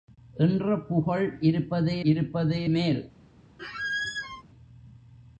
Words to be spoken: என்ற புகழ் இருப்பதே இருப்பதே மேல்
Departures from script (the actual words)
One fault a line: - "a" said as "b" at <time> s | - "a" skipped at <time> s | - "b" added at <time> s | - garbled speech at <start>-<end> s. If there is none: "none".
none